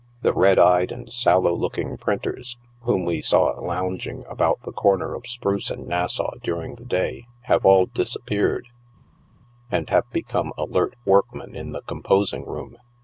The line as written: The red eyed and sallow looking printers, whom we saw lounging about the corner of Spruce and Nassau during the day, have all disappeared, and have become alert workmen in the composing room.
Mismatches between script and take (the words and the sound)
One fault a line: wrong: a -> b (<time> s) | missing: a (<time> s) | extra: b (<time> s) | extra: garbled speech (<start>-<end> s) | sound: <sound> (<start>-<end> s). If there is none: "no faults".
no faults